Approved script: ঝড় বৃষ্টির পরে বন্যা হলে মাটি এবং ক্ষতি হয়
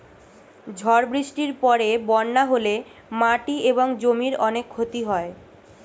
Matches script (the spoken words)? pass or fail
fail